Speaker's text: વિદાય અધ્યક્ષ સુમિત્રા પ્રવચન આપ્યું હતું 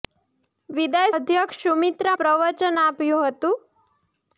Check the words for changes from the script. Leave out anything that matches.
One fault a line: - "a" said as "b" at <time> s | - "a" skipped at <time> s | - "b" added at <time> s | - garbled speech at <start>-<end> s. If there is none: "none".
none